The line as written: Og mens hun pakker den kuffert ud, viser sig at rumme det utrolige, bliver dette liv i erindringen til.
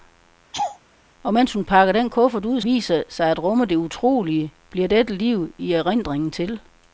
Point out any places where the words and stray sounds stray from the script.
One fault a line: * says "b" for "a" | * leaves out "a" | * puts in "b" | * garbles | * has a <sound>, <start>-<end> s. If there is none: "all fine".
* has a laugh, 0.5-0.8 s